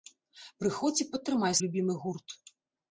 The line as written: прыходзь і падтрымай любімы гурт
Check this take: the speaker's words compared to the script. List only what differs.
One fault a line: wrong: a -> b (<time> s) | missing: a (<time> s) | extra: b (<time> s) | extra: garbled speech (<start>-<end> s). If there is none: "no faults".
no faults